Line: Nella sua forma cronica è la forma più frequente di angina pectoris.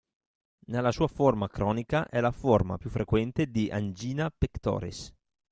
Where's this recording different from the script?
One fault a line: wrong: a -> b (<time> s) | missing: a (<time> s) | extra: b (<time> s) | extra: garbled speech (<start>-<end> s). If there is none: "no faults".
no faults